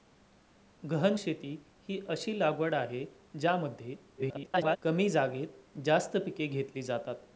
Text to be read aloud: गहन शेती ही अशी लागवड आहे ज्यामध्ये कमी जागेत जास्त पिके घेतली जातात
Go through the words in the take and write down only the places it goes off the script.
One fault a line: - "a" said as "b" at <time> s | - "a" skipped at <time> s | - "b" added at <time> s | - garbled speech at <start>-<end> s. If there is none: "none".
- garbled speech at 4.2-4.8 s